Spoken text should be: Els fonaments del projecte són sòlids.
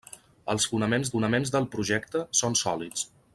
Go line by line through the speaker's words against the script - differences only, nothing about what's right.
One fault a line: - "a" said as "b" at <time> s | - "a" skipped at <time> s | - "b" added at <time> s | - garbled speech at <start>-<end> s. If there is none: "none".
- "fonaments" added at 1.1 s